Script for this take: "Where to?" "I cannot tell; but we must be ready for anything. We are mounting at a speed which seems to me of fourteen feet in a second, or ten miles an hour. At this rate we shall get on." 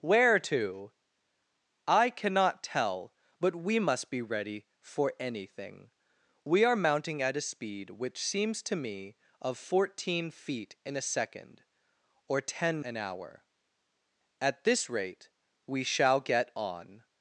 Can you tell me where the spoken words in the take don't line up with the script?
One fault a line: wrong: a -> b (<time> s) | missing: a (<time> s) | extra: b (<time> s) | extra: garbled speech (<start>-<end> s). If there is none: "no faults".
missing: miles (12.8 s)